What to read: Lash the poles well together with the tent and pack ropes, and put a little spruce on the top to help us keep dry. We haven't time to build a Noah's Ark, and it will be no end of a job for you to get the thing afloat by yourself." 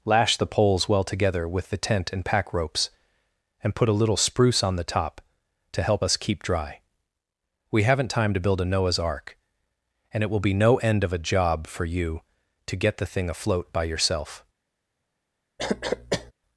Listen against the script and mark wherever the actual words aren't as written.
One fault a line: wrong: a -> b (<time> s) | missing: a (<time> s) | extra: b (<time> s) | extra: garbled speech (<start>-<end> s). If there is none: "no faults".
no faults